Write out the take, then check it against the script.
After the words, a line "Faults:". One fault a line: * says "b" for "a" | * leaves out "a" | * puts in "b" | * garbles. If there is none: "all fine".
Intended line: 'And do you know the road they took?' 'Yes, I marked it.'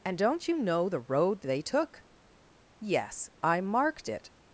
'And don't you know the road they took?' 'Yes, I marked it.'
Faults:
* says "don't" for "do"